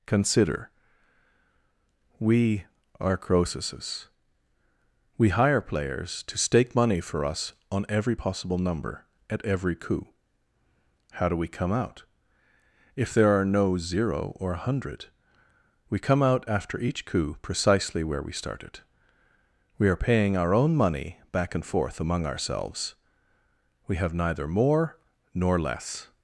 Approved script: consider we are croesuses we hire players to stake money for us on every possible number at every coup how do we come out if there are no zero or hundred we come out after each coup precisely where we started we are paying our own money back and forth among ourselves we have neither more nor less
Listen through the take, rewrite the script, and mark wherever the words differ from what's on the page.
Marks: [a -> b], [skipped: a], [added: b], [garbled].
consider we are croesuses we hire players to stake money for us on every possible number at every coup how do we come out if there are no zero or [added: a] hundred we come out after each coup precisely where we started we are paying our own money back and forth among ourselves we have neither more nor less